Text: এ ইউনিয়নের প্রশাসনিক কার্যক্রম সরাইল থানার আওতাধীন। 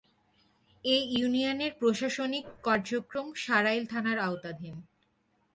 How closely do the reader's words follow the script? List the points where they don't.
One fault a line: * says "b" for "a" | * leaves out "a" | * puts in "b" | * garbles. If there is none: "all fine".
all fine